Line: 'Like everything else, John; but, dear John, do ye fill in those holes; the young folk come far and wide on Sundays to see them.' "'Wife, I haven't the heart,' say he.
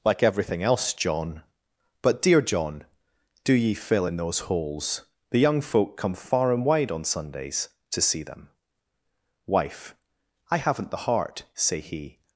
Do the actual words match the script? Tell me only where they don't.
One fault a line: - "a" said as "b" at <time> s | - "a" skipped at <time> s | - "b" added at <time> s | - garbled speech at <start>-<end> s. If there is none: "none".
none